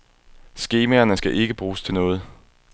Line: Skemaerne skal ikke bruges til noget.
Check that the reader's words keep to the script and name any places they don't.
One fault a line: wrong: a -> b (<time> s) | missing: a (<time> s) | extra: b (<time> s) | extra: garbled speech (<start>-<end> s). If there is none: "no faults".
no faults